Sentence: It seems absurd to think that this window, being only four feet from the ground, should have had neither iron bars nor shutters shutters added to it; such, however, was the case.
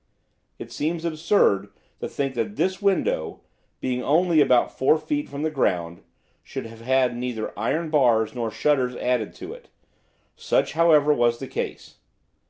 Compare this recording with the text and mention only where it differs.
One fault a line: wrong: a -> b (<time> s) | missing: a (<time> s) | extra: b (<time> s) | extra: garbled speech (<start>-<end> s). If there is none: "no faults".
extra: about (4.4 s)
missing: shutters (8.9 s)